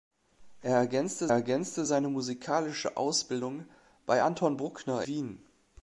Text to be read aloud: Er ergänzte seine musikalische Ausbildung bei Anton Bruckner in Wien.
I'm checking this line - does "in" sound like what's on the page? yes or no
no